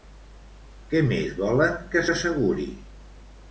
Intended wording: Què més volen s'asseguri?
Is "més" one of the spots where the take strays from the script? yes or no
no